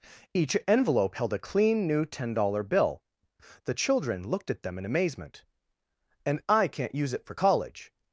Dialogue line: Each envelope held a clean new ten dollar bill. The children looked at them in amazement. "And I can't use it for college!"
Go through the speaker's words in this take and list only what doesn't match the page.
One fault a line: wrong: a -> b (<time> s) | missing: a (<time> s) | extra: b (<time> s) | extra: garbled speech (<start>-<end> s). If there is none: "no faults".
no faults